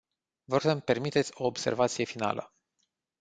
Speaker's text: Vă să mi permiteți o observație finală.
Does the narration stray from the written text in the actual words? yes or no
no